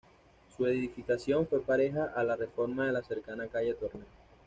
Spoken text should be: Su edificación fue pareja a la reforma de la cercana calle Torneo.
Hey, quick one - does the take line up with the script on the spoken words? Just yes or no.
yes